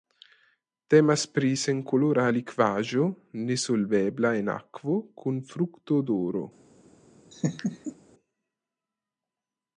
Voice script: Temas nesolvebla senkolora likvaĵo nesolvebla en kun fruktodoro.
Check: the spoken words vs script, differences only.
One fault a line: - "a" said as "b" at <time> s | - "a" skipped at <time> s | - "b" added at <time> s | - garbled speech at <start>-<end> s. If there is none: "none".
- "nesolvebla" said as "pri" at 1.3 s
- "akvo" added at 4.6 s